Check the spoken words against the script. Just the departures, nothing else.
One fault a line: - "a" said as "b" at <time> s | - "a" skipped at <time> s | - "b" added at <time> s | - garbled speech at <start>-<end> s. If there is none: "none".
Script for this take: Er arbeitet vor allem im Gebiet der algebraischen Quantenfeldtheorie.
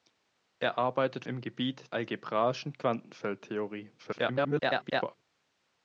- "vor allem" skipped at 1.2 s
- "der" skipped at 2.0 s
- garbled speech at 4.0-5.2 s